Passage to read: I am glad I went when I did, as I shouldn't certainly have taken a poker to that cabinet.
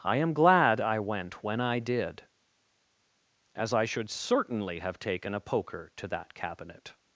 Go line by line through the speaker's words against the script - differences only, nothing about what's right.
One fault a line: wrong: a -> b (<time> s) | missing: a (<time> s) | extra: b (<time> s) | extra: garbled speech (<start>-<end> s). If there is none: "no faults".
wrong: shouldn't -> should (3.9 s)